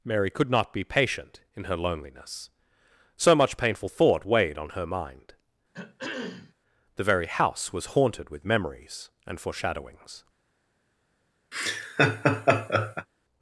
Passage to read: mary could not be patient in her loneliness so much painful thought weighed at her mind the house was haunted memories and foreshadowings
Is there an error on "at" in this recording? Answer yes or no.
yes